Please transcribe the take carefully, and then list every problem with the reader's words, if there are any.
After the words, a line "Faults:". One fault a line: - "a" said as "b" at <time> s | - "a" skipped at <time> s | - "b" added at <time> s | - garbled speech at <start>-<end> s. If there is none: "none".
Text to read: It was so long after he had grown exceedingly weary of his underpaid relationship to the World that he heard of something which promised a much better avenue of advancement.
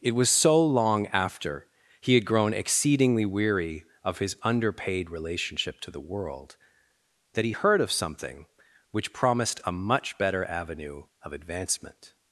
It was so long after he had grown exceedingly weary of his underpaid relationship to the World that he heard of something which promised a much better avenue of advancement.
Faults:
none